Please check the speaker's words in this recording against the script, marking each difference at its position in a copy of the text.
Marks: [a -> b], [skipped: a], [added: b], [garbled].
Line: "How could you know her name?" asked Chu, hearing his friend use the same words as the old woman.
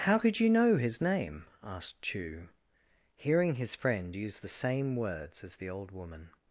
"How could you know [her -> his] name?" asked Chu, hearing his friend use the same words as the old woman.